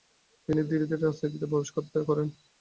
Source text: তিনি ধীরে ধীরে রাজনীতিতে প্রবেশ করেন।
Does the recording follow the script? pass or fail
pass